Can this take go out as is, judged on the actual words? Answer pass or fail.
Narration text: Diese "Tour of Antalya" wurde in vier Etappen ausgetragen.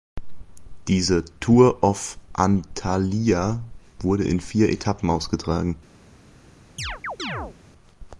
pass